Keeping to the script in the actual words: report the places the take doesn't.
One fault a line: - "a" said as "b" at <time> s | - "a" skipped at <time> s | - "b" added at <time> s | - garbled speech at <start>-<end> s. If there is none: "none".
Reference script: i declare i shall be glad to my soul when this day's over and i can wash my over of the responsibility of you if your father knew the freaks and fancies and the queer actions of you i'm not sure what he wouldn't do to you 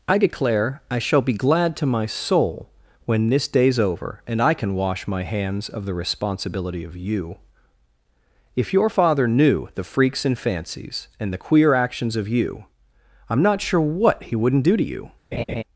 - "over" said as "hands" at 5.2 s